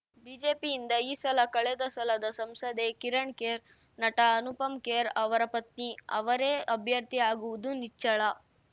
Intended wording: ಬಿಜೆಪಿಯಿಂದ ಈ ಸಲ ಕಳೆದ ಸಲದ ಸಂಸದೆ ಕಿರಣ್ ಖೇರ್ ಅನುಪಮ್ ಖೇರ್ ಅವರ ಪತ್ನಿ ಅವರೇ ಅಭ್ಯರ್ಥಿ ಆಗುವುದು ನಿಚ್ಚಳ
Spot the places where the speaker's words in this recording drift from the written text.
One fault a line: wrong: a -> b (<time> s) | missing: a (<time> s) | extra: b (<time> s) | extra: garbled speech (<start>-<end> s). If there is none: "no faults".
extra: ನಟ (4.0 s)